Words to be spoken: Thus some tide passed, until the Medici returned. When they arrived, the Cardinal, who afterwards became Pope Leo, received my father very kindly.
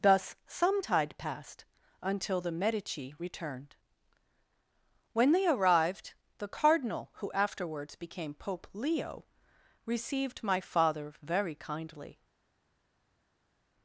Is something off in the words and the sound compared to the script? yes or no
no